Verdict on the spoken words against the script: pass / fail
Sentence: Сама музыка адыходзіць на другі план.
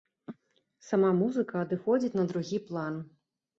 pass